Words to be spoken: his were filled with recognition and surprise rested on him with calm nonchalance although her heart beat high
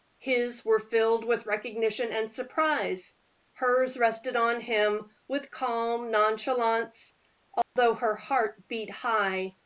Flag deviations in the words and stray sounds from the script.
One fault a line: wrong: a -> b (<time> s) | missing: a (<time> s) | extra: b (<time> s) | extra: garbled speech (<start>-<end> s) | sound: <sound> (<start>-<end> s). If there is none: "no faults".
extra: hers (3.5 s)
sound: dropout (7.6-7.8 s)